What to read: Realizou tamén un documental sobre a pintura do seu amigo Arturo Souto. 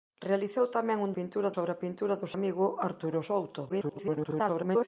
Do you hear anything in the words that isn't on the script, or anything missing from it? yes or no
yes